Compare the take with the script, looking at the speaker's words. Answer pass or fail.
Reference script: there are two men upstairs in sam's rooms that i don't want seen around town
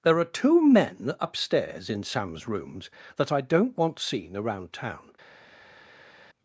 pass